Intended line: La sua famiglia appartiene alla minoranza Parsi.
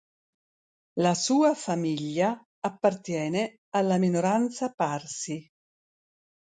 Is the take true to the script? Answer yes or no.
yes